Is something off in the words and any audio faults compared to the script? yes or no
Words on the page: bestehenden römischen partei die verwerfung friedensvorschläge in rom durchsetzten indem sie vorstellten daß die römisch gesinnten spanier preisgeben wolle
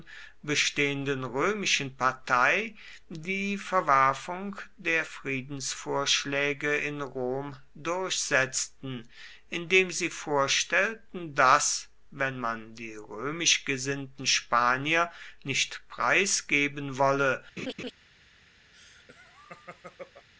yes